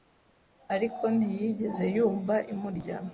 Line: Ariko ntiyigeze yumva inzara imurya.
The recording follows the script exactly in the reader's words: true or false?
false